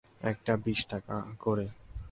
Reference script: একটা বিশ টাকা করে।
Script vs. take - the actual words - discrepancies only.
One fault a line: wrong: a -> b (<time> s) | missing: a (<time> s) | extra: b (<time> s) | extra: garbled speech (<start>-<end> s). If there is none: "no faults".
no faults